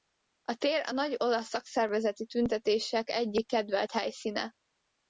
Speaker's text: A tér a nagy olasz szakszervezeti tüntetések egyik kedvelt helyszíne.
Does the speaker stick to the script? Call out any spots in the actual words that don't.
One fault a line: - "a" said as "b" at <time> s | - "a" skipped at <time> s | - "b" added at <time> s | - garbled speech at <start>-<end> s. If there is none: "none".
none